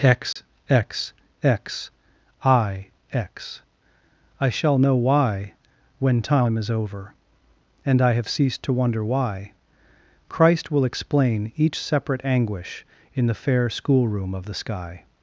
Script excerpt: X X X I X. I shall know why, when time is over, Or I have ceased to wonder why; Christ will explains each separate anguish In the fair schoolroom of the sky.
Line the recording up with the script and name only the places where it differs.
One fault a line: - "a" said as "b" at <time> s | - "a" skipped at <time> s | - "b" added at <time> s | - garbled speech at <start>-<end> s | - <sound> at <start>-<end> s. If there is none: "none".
- dropout at 0.3-0.4 s
- "Or" said as "And" at 7.8 s
- "explains" said as "explain" at 10.8 s